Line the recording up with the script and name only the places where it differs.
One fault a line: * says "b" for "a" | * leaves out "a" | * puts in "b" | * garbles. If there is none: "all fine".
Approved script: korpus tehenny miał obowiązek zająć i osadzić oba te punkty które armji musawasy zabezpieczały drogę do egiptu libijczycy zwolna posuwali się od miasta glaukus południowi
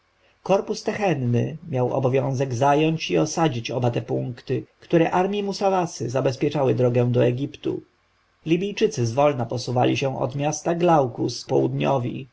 all fine